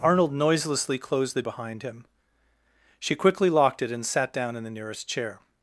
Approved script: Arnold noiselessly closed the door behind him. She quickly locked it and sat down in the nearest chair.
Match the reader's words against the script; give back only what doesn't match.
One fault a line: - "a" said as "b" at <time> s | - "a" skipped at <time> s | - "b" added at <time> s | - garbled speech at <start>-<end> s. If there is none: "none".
- "door" skipped at 1.4 s